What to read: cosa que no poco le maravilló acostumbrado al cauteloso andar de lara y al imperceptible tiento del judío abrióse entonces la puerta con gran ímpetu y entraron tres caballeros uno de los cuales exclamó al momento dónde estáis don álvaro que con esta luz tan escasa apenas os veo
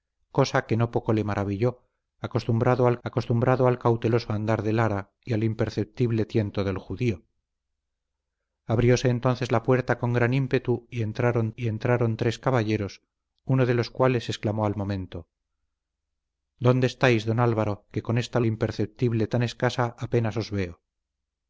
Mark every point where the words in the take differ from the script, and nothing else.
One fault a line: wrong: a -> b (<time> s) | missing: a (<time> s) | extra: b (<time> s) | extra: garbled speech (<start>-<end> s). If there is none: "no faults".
extra: acostumbrado al (3.0 s)
extra: y entraron (11.6 s)
wrong: luz -> imperceptible (18.5 s)